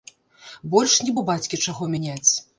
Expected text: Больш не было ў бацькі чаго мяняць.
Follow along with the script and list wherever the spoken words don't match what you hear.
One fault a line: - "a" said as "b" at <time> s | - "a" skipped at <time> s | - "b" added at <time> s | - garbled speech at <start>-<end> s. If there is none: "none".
- "было" skipped at 1.1 s